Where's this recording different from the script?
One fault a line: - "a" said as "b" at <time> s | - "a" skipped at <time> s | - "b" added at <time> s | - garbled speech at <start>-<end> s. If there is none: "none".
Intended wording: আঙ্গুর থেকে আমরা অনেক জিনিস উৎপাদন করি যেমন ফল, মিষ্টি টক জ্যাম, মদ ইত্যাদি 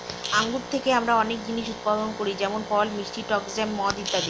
none